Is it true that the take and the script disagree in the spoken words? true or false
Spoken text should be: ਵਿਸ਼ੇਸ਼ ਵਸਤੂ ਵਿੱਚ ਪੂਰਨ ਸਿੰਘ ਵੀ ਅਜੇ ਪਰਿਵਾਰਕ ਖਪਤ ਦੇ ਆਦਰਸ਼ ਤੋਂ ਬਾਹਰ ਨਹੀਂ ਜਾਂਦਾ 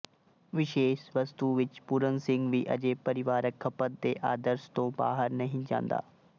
false